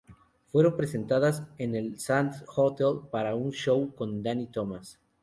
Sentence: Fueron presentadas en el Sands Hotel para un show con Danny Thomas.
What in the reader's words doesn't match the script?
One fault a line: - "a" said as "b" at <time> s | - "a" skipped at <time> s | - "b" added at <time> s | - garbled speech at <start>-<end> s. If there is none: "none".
none